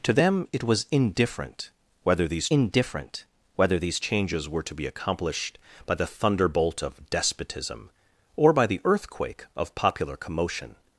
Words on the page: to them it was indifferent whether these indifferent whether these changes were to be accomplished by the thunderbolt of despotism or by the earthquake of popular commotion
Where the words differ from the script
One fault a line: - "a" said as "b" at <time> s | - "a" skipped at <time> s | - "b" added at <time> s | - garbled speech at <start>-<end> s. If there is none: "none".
none